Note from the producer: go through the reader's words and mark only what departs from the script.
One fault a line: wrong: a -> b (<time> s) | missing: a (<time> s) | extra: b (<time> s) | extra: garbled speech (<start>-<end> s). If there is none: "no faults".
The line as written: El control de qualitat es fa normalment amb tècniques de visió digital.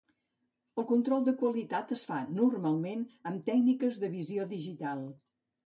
no faults